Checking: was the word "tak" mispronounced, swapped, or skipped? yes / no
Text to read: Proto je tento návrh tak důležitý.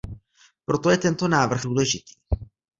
yes